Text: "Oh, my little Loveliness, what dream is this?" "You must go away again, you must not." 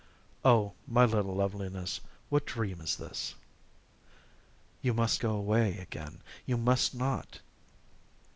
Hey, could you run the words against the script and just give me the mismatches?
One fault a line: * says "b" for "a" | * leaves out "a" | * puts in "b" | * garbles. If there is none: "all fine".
all fine